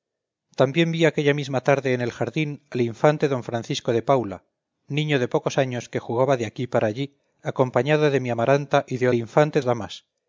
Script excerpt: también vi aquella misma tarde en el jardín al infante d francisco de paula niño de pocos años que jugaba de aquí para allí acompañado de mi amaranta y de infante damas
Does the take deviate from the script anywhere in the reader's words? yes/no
no